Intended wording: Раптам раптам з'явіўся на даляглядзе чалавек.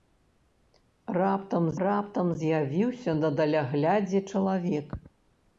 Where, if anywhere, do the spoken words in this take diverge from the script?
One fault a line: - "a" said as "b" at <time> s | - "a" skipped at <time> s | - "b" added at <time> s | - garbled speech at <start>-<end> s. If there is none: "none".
none